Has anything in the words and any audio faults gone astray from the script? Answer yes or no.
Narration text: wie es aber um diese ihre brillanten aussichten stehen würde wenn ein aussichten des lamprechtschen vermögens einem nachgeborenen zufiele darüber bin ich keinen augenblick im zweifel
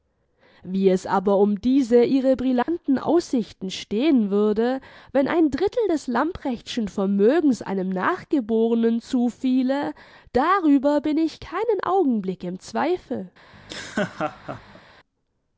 yes